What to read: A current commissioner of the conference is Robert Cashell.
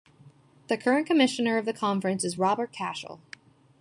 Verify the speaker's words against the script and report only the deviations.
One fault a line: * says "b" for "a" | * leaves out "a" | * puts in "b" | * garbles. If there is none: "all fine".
* says "The" for "A"